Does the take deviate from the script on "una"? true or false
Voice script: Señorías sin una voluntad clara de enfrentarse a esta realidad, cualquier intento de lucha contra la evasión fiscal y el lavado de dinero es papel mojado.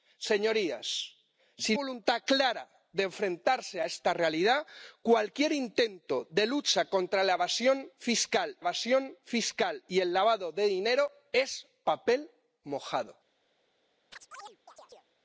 true